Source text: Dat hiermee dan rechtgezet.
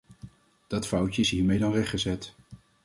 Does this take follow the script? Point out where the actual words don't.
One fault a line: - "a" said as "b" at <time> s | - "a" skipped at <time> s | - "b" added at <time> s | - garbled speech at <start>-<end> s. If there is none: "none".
- "foutje is" added at 0.9 s